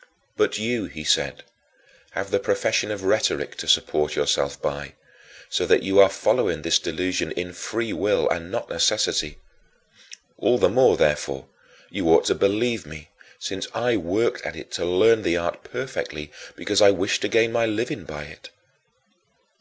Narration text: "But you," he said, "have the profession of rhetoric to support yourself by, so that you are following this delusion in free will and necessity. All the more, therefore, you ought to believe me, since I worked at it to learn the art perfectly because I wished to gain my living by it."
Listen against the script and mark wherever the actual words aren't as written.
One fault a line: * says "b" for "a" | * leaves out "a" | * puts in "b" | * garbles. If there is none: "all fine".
* puts in "not"